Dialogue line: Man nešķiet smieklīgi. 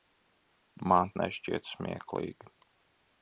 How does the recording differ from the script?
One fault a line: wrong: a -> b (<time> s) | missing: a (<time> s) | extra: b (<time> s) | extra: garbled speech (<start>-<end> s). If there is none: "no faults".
no faults